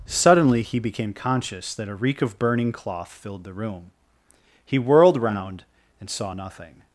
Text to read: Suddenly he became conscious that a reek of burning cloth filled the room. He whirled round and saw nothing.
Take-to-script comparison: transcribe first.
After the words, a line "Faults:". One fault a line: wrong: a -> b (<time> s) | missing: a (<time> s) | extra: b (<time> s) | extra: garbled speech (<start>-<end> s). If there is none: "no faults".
Suddenly he became conscious that a reek of burning cloth filled the room. He whirled round and saw nothing.
Faults:
no faults